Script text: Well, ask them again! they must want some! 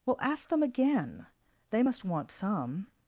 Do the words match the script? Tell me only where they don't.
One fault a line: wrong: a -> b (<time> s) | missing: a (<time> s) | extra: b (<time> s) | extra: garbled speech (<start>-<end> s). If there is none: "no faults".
no faults